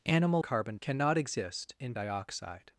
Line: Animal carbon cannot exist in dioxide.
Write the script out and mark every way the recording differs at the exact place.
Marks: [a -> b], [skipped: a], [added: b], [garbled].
Animal carbon cannot exist in dioxide.